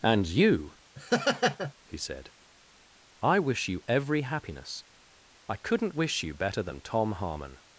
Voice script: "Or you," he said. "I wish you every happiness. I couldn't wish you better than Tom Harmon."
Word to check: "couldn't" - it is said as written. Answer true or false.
true